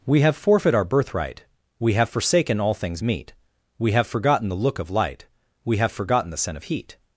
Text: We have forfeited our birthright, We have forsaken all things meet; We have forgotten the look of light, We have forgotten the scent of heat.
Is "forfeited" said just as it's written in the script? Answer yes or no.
no